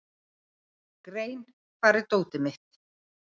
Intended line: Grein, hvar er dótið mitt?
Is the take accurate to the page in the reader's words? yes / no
yes